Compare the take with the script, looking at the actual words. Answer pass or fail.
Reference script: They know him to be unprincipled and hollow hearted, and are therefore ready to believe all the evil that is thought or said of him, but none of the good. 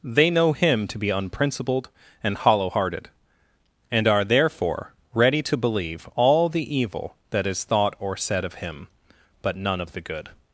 pass